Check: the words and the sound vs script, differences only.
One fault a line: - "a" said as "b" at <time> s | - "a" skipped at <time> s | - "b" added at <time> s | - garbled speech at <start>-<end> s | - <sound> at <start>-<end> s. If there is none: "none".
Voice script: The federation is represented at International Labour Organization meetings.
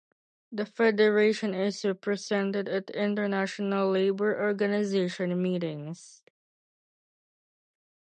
none